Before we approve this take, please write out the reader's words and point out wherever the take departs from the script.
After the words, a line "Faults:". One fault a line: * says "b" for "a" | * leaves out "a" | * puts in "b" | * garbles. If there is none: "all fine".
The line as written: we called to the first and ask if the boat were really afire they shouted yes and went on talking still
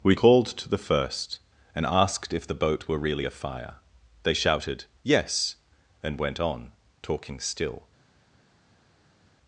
we called to the first and asked if the boat were really afire they shouted yes and went on talking still
Faults:
* says "asked" for "ask"